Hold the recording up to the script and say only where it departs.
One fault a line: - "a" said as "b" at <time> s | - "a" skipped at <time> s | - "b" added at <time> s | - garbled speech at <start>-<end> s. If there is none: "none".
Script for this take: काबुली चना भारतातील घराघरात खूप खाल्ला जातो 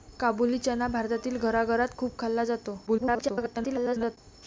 - garbled speech at 2.9-4.2 s